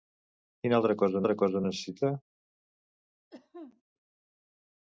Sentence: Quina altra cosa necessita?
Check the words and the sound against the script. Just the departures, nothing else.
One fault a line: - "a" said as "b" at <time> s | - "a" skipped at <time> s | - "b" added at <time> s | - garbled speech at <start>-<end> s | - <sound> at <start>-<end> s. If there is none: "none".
- "altra cosa" added at 1.2 s
- cough at 3.3-3.8 s